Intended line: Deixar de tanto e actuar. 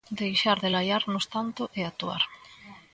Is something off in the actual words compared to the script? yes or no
yes